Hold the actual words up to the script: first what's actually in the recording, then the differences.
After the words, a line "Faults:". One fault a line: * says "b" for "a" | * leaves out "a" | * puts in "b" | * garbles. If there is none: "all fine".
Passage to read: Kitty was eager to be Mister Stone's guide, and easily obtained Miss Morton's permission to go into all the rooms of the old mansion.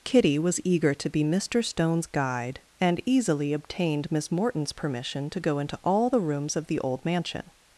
Kitty was eager to be Mister Stone's guide, and easily obtained Miss Morton's permission to go into all the rooms of the old mansion.
Faults:
all fine